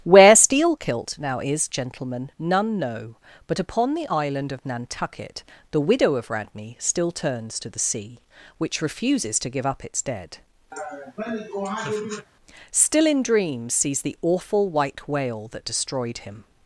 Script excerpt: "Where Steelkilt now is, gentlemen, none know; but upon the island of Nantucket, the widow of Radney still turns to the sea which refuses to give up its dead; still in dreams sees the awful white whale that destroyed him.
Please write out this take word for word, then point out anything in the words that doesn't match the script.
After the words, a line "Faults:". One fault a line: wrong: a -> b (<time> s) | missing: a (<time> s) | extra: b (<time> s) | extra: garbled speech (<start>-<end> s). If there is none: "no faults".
"Where Steelkilt now is, gentlemen, none know; but upon the island of Nantucket, the widow of Radney still turns to the sea which refuses to give up its dead; still in dreams sees the awful white whale that destroyed him.
Faults:
no faults